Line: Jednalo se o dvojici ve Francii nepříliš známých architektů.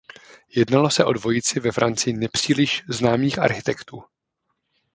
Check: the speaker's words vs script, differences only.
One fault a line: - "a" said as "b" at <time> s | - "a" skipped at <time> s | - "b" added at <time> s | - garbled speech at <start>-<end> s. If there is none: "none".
none